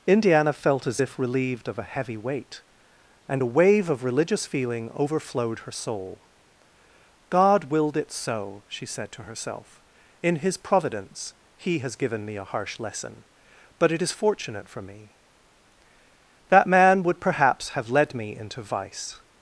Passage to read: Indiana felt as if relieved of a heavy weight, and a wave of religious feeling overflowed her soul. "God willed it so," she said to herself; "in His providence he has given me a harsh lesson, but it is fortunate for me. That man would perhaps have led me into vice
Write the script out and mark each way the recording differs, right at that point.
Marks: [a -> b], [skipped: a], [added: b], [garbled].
Indiana felt as if relieved of a heavy weight, and a wave of religious feeling overflowed her soul. "God willed it so," she said to herself; "in His providence he has given me a harsh lesson, but it is fortunate for me. That man would perhaps have led me into vice